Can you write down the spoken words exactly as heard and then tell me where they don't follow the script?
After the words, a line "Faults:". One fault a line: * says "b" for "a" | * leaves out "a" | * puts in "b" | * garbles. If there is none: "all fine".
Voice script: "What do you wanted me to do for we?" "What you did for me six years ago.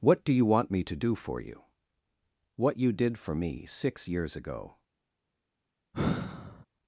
"What do you want me to do for you?" "What you did for me six years ago.
Faults:
* says "want" for "wanted"
* says "you" for "we"